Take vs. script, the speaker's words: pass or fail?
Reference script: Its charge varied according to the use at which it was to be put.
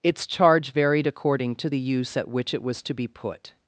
pass